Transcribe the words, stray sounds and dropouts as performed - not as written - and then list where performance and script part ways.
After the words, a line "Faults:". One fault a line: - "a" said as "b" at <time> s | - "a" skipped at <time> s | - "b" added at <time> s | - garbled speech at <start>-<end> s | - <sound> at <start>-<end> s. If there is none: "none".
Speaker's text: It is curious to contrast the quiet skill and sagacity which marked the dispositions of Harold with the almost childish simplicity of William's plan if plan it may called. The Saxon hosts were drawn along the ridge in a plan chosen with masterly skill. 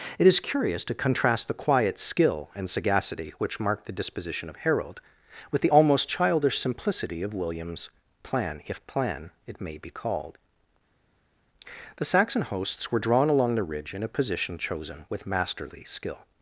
It is curious to contrast the quiet skill and sagacity which marked the disposition of Harold with the almost childish simplicity of William's plan if plan it may be called. The Saxon hosts were drawn along the ridge in a position chosen with masterly skill.
Faults:
- "dispositions" said as "disposition" at 3.9 s
- "be" added at 9.8 s
- "plan" said as "position" at 14.1 s